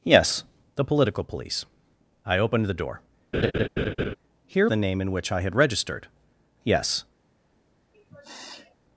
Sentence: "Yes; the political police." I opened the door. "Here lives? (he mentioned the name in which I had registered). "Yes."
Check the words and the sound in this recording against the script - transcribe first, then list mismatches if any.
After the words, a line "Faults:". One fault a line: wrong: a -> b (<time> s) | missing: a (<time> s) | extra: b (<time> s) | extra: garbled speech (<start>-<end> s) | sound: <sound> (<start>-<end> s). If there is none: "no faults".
"Yes; the political police." I opened the door. "Here the name in which I had registered). "Yes."
Faults:
sound: laugh (3.3-4.2 s)
missing: lives he mentioned (4.7 s)
sound: sniff (7.9-8.8 s)